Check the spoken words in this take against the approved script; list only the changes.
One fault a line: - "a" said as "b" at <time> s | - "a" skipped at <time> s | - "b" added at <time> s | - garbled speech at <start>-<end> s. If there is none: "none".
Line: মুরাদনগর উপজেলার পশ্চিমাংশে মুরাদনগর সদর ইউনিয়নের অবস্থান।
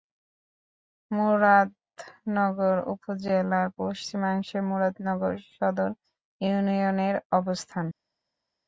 none